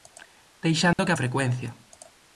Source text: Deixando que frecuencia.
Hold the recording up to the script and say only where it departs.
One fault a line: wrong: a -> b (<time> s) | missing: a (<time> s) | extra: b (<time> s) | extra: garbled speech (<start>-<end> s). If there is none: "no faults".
no faults